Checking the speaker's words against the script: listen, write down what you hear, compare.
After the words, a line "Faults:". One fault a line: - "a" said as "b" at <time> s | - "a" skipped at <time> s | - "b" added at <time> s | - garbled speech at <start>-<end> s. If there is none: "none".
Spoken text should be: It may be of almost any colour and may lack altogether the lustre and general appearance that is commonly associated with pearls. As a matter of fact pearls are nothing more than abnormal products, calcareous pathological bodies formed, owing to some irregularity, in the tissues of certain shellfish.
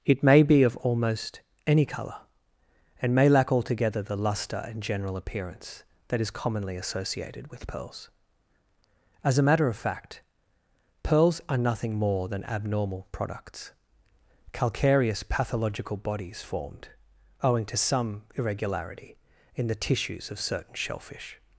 It may be of almost any colour and may lack altogether the lustre and general appearance that is commonly associated with pearls. As a matter of fact pearls are nothing more than abnormal products, calcareous pathological bodies formed, owing to some irregularity, in the tissues of certain shellfish.
Faults:
none